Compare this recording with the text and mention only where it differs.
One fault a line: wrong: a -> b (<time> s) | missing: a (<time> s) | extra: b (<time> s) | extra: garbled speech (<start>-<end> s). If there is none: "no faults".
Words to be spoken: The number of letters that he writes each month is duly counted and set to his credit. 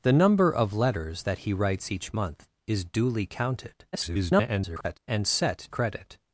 extra: garbled speech (3.9-5.0 s)
missing: to his (5.7 s)